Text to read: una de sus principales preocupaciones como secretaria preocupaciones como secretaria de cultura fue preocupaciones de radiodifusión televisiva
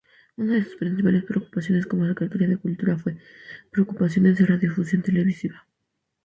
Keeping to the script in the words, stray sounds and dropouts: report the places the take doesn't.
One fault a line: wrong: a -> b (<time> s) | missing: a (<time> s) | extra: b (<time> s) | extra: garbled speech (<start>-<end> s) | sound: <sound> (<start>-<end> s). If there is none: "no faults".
missing: preocupaciones como secretaria (2.5 s)